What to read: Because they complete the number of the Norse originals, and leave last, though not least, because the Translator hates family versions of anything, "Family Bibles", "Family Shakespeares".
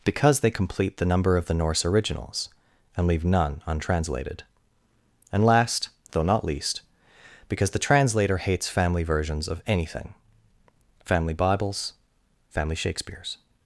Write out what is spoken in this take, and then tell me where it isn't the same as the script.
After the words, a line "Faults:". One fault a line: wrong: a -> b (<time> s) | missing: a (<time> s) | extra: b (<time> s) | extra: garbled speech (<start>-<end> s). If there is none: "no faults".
Because they complete the number of the Norse originals, and leave none untranslated. And last, though not least, because the Translator hates family versions of anything, "Family Bibles", "Family Shakespeares".
Faults:
extra: none untranslated And (3.2 s)